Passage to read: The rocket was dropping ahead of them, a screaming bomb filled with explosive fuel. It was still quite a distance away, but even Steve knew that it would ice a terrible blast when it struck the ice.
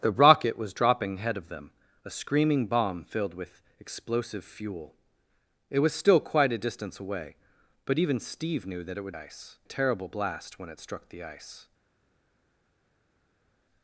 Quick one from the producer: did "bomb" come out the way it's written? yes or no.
yes